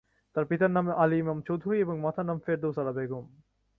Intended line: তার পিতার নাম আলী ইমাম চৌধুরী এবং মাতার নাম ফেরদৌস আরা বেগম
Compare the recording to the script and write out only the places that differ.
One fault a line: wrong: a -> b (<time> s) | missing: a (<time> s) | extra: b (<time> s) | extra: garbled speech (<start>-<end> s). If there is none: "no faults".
no faults